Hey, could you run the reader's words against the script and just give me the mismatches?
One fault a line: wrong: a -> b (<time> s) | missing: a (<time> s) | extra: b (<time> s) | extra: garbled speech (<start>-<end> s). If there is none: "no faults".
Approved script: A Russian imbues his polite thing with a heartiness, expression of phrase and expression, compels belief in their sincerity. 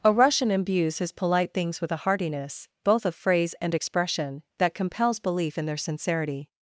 wrong: thing -> things (1.5 s)
wrong: expression -> both (2.8 s)
extra: that (4.6 s)